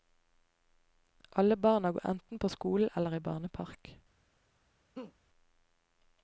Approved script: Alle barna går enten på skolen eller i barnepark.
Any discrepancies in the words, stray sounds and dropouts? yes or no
yes